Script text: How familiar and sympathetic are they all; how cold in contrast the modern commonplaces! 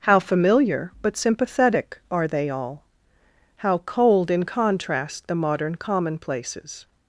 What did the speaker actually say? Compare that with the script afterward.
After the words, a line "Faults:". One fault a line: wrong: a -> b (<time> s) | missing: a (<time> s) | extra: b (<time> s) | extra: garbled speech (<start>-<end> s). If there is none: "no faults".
How familiar but sympathetic are they all; how cold in contrast the modern commonplaces!
Faults:
wrong: and -> but (1.0 s)